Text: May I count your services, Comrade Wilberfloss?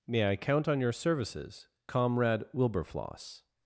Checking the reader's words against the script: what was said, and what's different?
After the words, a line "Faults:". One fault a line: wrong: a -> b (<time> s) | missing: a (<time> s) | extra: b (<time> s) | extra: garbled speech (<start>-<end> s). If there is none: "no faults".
May I count on your services, Comrade Wilberfloss?
Faults:
extra: on (0.7 s)